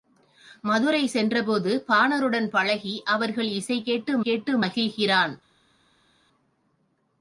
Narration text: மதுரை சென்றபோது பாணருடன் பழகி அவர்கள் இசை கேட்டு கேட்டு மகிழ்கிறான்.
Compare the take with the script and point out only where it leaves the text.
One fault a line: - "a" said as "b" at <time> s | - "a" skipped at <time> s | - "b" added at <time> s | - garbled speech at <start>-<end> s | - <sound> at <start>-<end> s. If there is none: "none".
none